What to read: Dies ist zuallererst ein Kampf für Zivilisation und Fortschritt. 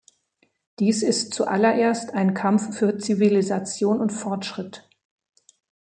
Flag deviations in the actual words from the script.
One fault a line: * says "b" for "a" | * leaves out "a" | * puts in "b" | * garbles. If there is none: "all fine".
all fine